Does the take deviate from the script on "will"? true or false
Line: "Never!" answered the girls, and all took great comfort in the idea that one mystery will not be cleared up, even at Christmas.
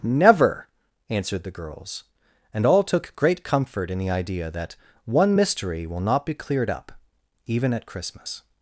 false